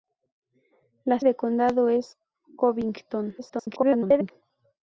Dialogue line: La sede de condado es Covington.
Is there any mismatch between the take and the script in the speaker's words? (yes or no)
yes